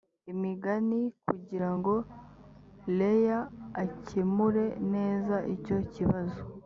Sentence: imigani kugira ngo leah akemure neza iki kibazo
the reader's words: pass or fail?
fail